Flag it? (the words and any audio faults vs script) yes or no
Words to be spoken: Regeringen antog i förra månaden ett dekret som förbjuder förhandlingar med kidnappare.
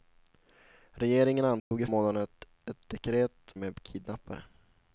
yes